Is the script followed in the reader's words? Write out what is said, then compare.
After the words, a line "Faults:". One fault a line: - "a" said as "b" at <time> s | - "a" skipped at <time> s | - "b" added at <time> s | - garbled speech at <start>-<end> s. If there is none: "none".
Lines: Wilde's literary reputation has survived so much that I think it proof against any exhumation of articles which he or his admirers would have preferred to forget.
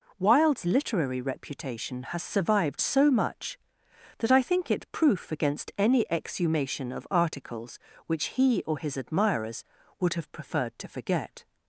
Wilde's literary reputation has survived so much that I think it proof against any exhumation of articles which he or his admirers would have preferred to forget.
Faults:
none